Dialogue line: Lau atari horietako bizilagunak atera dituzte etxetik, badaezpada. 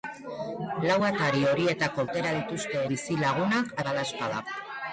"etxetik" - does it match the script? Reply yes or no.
no